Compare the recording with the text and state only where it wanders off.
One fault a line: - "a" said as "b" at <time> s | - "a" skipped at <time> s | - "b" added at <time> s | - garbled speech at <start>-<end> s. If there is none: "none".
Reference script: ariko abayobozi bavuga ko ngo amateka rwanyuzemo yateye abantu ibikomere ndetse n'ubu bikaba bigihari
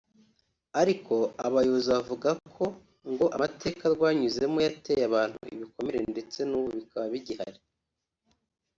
none